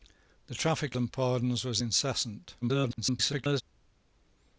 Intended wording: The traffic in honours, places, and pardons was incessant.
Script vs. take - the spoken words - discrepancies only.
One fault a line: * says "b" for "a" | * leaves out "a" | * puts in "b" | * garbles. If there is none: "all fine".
* leaves out "in honours places"
* garbles